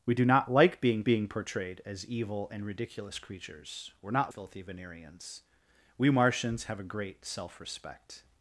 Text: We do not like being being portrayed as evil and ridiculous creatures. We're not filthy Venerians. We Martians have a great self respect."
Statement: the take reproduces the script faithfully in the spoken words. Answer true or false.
true